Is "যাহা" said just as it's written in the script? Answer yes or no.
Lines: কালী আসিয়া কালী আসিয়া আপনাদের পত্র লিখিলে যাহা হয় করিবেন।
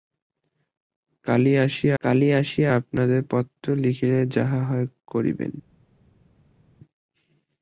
yes